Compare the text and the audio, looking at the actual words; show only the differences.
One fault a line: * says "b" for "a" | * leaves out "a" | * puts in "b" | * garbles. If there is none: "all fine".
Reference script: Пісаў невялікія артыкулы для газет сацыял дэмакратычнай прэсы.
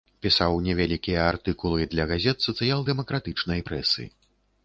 all fine